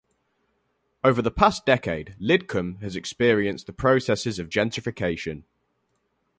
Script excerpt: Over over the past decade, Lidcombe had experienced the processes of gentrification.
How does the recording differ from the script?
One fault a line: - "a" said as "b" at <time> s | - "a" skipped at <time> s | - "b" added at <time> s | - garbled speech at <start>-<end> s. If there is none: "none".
- "over" skipped at 1.2 s
- "had" said as "has" at 2.8 s